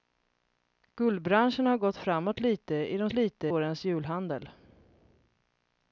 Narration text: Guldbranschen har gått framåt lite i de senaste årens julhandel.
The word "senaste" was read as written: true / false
false